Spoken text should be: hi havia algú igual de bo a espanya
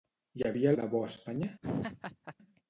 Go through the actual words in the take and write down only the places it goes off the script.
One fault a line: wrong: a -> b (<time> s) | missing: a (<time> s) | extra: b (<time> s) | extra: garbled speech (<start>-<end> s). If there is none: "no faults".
missing: algú igual (0.7 s)